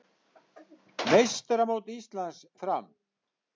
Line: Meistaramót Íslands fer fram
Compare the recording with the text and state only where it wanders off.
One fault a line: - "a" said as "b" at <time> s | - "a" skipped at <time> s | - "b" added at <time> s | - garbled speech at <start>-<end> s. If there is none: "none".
- "fer" skipped at 2.4 s